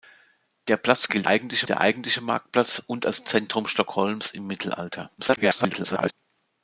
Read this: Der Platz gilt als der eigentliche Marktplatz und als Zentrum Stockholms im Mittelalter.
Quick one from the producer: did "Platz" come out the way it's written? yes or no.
yes